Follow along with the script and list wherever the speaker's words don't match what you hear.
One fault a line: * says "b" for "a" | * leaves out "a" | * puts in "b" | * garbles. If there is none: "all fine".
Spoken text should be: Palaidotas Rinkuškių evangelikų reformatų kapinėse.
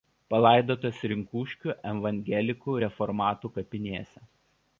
all fine